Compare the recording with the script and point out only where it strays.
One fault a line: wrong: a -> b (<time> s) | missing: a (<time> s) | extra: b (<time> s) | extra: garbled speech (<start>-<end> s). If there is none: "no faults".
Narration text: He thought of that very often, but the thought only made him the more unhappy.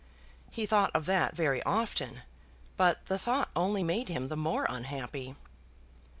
no faults